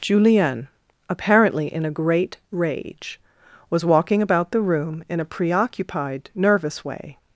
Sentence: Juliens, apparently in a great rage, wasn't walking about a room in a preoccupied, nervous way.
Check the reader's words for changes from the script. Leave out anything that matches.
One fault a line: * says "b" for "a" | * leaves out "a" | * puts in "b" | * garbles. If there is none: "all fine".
* says "Julien" for "Juliens"
* says "was" for "wasn't"
* says "the" for "a"